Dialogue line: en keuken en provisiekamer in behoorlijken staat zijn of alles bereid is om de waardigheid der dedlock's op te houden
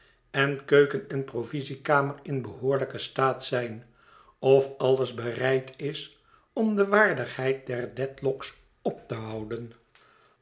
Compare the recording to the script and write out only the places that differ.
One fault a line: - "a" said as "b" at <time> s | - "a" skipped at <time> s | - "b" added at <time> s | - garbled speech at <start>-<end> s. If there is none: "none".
none